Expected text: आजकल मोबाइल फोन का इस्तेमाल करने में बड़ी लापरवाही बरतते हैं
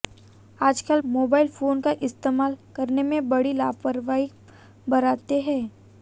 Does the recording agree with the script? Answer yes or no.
yes